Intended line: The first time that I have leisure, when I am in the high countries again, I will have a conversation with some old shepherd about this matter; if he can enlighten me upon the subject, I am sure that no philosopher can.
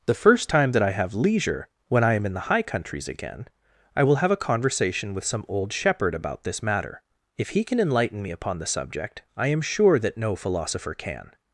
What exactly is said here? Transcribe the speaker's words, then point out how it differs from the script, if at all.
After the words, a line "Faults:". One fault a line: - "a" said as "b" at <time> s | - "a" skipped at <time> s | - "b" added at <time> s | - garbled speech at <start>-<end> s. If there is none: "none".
The first time that I have leisure, when I am in the high countries again, I will have a conversation with some old shepherd about this matter; if he can enlighten me upon the subject, I am sure that no philosopher can.
Faults:
none